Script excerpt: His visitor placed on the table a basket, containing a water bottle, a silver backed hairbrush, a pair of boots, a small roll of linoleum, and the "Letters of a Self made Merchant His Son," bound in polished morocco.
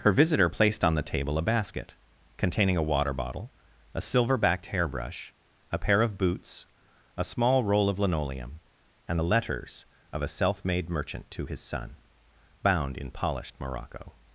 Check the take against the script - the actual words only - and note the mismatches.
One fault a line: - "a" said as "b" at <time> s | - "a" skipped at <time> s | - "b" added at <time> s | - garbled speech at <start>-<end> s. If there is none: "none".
- "His" said as "Her" at 0.0 s
- "to" added at 11.3 s